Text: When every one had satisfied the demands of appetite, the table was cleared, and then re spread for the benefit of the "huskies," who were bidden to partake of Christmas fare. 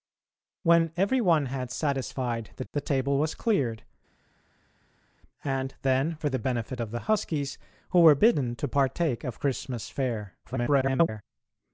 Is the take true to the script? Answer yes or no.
no